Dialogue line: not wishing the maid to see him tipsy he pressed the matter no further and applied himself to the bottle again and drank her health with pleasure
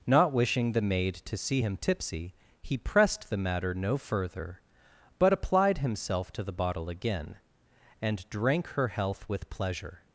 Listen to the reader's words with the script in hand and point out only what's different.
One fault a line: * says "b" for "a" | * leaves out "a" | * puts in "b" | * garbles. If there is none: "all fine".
* says "but" for "and"